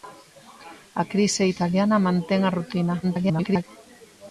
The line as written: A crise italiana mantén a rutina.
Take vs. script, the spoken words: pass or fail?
fail